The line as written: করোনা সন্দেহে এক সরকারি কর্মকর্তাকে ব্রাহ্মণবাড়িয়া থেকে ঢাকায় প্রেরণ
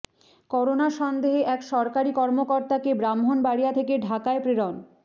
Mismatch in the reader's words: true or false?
false